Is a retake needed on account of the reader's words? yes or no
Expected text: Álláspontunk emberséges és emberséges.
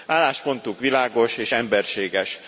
yes